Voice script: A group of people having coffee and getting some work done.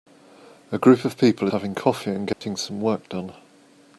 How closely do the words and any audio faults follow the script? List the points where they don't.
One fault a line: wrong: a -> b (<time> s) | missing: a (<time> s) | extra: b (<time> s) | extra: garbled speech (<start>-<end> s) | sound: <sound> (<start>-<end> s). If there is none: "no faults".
sound: dropout (2.3-2.4 s)